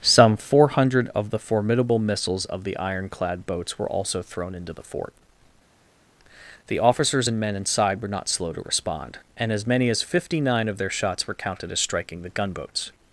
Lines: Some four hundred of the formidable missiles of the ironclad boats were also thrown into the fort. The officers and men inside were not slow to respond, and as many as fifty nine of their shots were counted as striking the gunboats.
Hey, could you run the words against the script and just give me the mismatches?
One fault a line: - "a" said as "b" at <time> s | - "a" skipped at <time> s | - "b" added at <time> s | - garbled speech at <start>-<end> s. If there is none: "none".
none